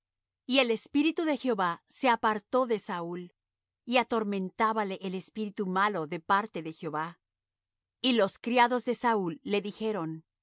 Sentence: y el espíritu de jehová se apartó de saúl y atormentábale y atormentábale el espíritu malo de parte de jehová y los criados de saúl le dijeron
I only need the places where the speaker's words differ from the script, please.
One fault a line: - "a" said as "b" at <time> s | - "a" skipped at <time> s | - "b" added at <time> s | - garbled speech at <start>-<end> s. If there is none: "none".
- "y atormentábale" skipped at 5.0 s